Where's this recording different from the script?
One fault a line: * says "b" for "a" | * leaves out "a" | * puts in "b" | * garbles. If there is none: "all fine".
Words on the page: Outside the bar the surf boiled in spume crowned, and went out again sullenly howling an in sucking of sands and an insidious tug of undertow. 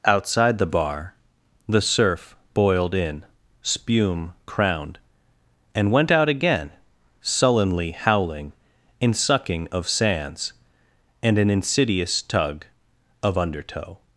* leaves out "an"